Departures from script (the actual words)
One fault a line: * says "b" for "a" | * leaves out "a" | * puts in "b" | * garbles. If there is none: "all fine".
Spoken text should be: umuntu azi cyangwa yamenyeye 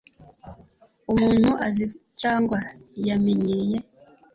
all fine